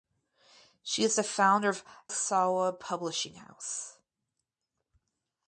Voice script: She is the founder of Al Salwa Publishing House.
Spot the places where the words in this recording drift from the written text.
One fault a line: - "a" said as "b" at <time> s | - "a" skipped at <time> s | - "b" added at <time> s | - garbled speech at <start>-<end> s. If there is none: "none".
- "Al" skipped at 1.9 s